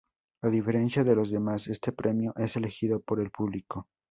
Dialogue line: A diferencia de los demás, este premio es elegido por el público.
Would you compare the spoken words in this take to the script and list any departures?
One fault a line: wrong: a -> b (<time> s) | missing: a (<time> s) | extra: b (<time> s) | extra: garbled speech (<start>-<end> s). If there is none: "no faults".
no faults